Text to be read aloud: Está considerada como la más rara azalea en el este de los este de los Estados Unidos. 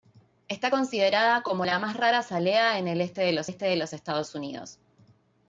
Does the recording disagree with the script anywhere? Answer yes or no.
no